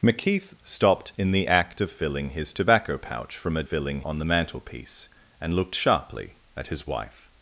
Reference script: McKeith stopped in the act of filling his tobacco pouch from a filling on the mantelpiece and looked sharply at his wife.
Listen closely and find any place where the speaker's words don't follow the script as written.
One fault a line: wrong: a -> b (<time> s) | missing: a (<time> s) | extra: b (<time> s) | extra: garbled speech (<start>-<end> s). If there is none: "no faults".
no faults